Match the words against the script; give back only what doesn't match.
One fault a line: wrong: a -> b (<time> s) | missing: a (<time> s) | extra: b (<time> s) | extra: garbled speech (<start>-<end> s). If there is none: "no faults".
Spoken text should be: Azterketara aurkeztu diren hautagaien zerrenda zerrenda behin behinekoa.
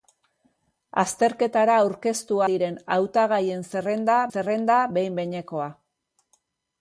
no faults